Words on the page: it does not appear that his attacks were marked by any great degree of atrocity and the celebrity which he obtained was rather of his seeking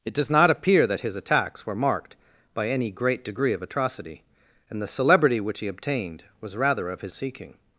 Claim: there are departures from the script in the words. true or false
false